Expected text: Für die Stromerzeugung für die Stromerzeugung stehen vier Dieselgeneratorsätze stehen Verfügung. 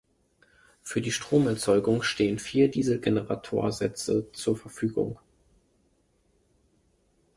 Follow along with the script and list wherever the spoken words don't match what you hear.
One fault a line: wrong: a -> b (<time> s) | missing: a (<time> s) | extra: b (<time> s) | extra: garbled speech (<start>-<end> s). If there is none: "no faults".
missing: für die Stromerzeugung (2.0 s)
wrong: stehen -> zur (4.3 s)